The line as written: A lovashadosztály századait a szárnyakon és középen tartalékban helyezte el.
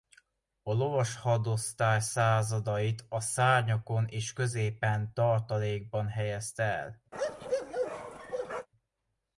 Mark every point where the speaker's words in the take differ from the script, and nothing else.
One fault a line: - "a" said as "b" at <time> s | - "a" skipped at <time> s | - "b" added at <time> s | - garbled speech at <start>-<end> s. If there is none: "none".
none